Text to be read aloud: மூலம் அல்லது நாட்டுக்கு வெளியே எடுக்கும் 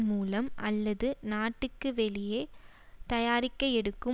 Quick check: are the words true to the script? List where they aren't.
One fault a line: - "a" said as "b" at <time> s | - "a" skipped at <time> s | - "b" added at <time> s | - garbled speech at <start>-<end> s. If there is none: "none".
- "தயாரிக்க" added at 3.1 s